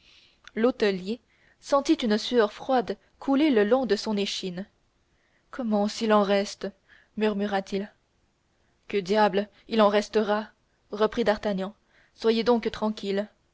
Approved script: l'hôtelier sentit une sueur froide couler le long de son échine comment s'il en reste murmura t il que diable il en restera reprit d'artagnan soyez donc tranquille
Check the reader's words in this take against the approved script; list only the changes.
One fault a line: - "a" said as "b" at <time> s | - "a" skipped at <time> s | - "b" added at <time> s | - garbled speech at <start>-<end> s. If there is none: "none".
none